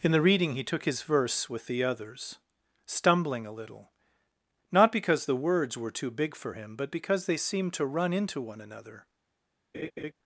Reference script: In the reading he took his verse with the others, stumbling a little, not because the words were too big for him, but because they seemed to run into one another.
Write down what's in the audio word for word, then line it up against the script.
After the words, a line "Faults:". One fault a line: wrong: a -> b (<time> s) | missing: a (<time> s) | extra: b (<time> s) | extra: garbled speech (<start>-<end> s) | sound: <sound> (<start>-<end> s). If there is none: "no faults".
In the reading he took his verse with the others, stumbling a little, not because the words were too big for him, but because they seemed to run into one another.
Faults:
sound: laugh (9.7-10.1 s)